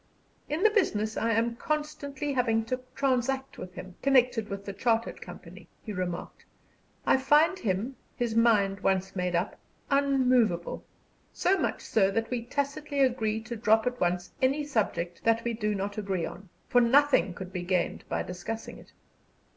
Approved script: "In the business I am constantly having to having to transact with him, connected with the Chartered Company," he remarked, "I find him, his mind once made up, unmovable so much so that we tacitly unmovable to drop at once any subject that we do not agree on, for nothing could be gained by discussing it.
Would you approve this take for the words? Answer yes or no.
no